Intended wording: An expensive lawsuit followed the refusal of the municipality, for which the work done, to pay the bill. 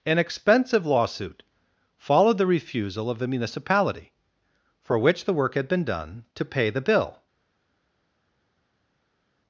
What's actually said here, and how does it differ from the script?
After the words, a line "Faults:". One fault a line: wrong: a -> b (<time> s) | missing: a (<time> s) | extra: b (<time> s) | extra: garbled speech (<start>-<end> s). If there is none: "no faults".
An expensive lawsuit followed the refusal of the municipality, for which the work had been done, to pay the bill.
Faults:
extra: had been (5.5 s)